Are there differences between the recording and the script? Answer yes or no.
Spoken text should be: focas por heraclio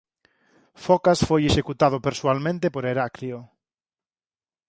yes